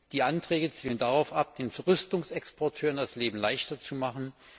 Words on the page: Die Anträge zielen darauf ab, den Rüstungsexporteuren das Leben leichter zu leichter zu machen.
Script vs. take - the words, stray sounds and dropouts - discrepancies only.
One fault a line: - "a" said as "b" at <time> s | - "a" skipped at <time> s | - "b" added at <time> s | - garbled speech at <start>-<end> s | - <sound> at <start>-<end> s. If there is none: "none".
- "leichter zu" skipped at 3.9 s